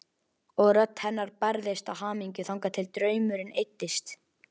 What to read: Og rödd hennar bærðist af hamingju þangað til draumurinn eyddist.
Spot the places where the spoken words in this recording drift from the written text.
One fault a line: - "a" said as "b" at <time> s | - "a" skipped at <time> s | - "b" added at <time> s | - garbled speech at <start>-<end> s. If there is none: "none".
none